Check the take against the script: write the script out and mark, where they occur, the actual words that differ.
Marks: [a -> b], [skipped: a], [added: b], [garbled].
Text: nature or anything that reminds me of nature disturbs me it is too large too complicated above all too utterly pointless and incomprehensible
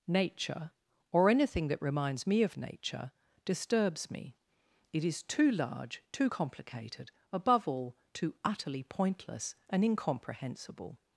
nature or anything that reminds me of nature disturbs me it is too large too complicated above all too utterly pointless and incomprehensible